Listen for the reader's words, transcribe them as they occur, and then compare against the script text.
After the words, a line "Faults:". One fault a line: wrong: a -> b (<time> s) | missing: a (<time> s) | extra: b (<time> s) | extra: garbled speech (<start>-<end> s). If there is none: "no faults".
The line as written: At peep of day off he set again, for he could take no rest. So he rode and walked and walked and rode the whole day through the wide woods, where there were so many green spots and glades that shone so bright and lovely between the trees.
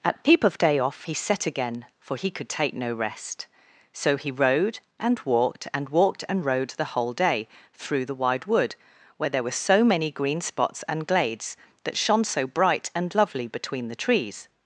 At peep of day off he set again, for he could take no rest. So he rode and walked and walked and rode the whole day through the wide wood, where there were so many green spots and glades that shone so bright and lovely between the trees.
Faults:
wrong: woods -> wood (8.4 s)